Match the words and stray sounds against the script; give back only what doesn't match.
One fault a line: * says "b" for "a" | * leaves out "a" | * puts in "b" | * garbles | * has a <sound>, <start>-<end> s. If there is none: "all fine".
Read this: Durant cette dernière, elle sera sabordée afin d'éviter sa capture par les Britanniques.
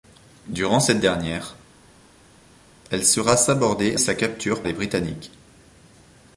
* leaves out "afin d'éviter"
* leaves out "par"